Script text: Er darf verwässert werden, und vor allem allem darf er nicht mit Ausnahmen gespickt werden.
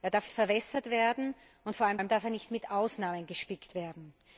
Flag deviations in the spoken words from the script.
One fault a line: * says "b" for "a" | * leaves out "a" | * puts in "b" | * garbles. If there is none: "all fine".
all fine